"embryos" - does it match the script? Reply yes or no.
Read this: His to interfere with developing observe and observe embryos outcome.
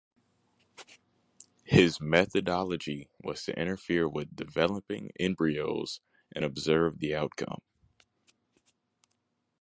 no